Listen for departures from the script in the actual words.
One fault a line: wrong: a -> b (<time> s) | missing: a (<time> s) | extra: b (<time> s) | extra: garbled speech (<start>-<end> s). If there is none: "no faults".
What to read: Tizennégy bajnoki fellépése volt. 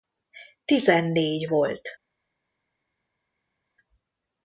missing: bajnoki fellépése (1.5 s)